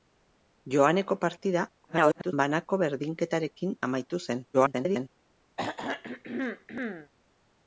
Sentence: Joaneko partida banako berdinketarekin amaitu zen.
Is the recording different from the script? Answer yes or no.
yes